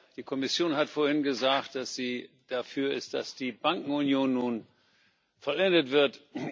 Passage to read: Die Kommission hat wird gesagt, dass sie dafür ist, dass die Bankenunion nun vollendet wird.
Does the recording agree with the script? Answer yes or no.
no